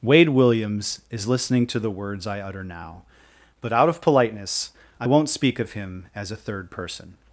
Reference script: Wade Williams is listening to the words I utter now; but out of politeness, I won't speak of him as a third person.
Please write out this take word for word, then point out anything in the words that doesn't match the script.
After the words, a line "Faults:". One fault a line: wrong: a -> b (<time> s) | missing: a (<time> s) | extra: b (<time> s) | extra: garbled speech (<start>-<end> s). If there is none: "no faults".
Wade Williams is listening to the words I utter now; but out of politeness, I won't speak of him as a third person.
Faults:
no faults